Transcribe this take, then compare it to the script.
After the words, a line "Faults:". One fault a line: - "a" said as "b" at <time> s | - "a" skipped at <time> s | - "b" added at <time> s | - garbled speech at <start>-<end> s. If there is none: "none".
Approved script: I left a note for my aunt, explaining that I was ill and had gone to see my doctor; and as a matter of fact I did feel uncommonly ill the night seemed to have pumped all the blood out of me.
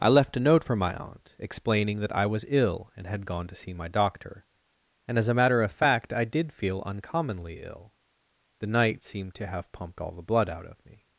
I left a note for my aunt, explaining that I was ill and had gone to see my doctor; and as a matter of fact I did feel uncommonly ill the night seemed to have pumped all the blood out of me.
Faults:
none